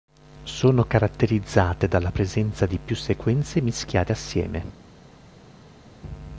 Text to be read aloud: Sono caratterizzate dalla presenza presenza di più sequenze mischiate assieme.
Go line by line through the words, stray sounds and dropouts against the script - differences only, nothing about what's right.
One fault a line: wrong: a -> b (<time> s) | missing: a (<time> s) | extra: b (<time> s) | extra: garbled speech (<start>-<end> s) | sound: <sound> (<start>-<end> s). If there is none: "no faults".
missing: presenza (2.6 s)